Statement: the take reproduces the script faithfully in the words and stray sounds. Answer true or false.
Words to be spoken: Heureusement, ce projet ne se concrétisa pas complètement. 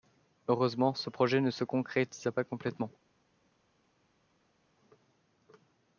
true